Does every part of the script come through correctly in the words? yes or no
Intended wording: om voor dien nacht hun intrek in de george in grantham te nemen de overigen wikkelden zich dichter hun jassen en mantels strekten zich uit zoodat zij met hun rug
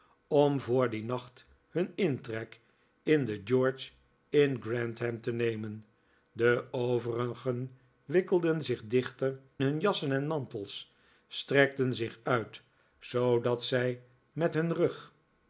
yes